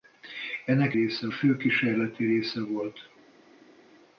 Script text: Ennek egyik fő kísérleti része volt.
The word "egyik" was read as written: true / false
false